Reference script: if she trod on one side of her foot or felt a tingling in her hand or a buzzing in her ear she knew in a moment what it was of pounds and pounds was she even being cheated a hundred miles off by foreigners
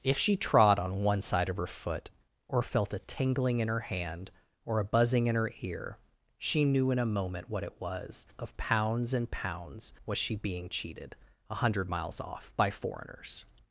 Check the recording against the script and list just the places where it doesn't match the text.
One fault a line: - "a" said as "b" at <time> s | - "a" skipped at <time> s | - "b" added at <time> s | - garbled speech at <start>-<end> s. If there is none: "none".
- "even" skipped at 10.4 s